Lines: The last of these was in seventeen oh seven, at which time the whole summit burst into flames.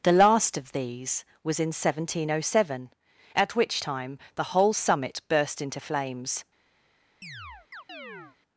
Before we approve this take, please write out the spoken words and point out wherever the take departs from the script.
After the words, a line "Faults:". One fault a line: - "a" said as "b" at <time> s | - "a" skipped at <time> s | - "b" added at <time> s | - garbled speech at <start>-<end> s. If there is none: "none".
The last of these was in seventeen oh seven, at which time the whole summit burst into flames.
Faults:
none